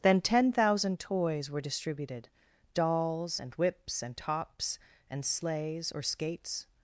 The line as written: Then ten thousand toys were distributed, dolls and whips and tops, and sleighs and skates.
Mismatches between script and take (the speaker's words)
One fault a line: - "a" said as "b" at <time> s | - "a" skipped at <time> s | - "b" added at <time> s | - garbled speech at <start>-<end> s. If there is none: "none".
- "and" said as "or" at 5.9 s